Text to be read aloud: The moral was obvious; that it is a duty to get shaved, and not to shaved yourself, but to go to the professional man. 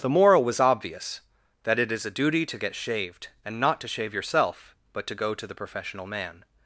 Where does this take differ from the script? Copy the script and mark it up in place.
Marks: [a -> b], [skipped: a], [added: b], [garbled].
The moral was obvious; that it is a duty to get shaved, and not to [shaved -> shave] yourself, but to go to the professional man.